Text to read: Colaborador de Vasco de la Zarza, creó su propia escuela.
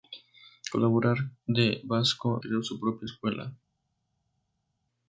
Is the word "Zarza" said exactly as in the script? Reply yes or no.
no